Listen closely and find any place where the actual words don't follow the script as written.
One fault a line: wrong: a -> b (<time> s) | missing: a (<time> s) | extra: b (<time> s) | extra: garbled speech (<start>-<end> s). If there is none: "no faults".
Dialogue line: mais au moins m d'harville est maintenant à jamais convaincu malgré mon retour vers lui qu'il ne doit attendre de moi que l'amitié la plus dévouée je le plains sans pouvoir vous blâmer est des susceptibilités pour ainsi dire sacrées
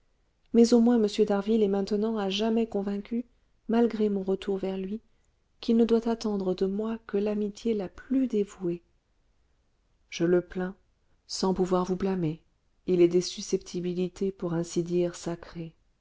extra: il (12.9 s)